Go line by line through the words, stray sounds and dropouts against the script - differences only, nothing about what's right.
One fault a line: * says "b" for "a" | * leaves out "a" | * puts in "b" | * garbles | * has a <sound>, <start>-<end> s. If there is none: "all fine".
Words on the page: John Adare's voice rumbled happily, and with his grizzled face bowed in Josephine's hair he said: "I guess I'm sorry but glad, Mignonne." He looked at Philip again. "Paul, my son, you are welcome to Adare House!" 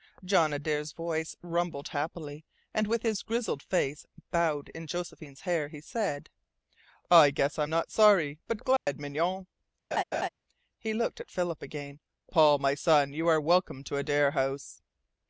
* puts in "not"
* has a dropout, 8.8-8.9 s
* has a laugh, 9.9-10.3 s